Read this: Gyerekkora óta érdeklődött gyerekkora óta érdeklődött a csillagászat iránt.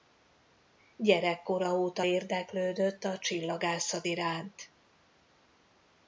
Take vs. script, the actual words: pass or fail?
fail